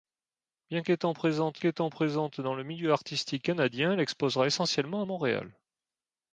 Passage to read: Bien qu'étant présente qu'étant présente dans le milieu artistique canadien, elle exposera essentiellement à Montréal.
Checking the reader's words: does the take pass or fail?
pass